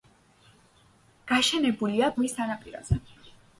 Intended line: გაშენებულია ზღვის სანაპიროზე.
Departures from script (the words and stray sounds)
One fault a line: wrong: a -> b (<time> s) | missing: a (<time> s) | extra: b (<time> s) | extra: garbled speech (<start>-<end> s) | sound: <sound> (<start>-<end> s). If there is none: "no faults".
no faults